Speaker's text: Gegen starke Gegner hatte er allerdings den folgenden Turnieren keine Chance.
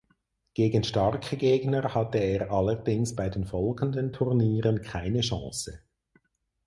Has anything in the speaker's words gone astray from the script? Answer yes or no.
yes